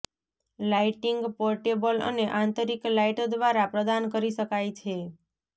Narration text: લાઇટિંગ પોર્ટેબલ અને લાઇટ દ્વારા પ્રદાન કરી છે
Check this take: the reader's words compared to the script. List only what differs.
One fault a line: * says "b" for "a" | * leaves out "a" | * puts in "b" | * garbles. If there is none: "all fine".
* puts in "આંતરિક"
* puts in "શકાય"